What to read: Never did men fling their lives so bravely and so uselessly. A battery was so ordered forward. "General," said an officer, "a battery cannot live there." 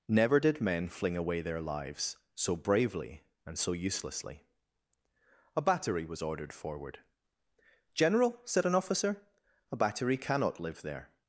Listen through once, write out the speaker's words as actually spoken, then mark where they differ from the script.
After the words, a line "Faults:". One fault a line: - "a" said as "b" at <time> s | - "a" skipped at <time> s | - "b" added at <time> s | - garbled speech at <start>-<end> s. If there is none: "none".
Never did men fling away their lives so bravely and so uselessly. A battery was ordered forward. "General," said an officer, "a battery cannot live there."
Faults:
- "away" added at 1.1 s
- "so" skipped at 6.2 s